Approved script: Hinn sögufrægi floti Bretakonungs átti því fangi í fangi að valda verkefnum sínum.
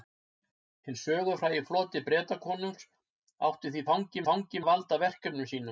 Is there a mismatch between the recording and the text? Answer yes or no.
no